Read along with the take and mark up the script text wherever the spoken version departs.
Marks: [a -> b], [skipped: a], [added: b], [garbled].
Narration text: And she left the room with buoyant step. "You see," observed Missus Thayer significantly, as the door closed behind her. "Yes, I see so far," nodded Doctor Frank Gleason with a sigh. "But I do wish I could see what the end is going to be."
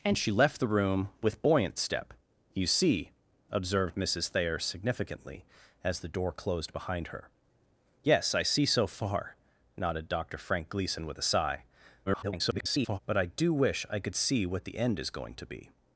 And she left the room with buoyant step. "You see," observed Missus Thayer significantly, as the door closed behind her. "Yes, I see so far," nodded Doctor Frank Gleason with a sigh. [garbled] "But I do wish I could see what the end is going to be."